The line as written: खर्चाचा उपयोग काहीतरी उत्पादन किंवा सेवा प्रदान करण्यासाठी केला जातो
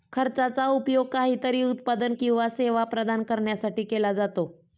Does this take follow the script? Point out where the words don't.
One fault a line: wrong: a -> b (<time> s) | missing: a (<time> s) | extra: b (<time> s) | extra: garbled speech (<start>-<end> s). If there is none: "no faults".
no faults